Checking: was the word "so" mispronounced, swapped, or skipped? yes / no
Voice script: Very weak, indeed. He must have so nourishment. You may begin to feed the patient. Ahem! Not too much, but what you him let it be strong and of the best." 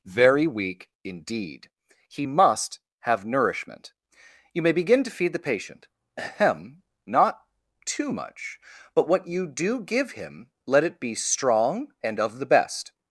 yes